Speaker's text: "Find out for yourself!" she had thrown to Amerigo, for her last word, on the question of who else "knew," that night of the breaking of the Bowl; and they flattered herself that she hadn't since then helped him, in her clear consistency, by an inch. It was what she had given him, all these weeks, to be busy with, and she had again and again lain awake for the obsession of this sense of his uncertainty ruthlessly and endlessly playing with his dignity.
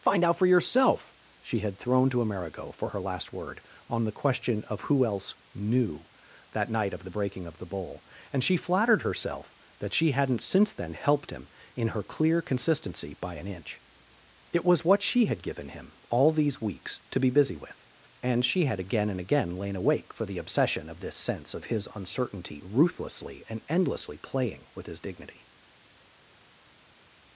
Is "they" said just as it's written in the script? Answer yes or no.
no